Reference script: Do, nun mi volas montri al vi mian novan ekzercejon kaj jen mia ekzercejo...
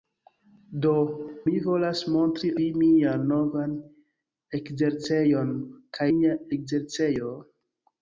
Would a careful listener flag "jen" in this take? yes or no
yes